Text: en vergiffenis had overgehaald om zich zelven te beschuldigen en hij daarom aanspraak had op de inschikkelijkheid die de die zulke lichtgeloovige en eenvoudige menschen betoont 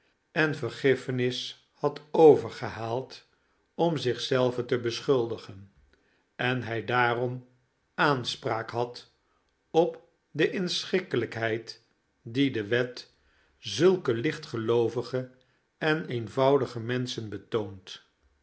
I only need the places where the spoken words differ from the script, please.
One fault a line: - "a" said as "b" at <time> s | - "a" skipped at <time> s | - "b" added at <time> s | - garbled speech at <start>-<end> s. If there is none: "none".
- "die" said as "wet" at 12.7 s